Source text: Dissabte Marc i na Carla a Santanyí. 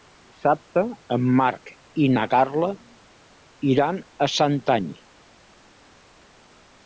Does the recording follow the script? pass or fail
fail